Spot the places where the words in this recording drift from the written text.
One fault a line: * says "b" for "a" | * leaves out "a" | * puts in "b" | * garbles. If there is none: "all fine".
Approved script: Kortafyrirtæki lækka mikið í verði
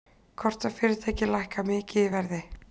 all fine